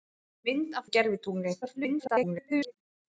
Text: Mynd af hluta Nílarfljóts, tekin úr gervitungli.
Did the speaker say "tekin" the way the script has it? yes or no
no